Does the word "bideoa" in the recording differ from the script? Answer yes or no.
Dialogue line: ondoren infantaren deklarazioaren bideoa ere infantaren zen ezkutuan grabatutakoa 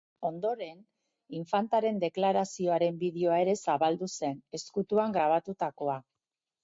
no